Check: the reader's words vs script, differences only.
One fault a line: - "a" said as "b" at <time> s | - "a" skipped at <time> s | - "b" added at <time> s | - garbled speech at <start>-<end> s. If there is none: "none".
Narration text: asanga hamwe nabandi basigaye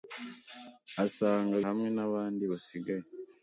none